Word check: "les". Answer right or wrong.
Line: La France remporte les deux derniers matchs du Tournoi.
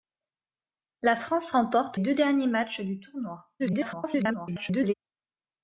wrong